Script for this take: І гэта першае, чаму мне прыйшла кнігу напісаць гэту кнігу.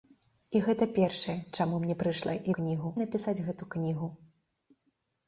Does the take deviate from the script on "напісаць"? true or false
false